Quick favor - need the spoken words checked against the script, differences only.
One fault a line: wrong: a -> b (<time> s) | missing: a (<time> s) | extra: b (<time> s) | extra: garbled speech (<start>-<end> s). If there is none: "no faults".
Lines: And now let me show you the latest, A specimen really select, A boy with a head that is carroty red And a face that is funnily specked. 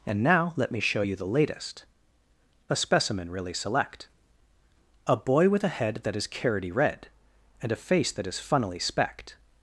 no faults